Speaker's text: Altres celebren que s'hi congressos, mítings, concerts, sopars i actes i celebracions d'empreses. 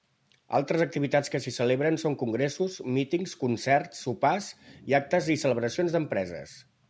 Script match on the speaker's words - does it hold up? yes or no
no